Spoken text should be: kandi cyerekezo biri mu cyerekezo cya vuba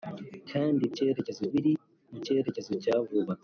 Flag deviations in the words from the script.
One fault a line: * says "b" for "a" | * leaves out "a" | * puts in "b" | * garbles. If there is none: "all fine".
all fine